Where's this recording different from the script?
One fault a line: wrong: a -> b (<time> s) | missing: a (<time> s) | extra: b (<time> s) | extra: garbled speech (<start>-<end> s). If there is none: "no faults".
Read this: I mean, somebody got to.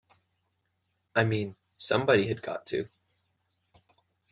extra: had (2.3 s)